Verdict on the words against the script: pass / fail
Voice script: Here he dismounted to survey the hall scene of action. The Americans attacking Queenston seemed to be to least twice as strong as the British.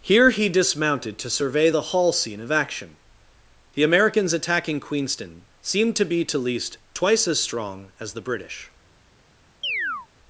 pass